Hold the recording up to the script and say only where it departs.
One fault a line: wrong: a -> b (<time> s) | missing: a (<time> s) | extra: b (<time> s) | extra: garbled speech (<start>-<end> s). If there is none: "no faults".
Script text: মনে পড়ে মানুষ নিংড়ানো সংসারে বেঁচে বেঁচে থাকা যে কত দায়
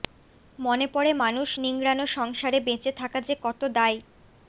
missing: বেঁচে (2.9 s)